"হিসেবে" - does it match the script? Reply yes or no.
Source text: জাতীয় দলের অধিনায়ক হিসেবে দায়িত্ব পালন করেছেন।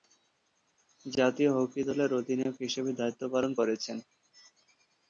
yes